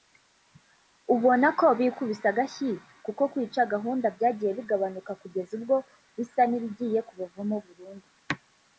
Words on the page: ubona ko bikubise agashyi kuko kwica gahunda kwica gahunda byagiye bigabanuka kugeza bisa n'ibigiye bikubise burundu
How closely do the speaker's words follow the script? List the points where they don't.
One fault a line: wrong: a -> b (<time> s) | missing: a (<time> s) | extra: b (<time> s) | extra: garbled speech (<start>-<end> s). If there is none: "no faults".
missing: kwica gahunda (4.1 s)
extra: ubwo (5.6 s)
wrong: bikubise -> kubavamo (7.1 s)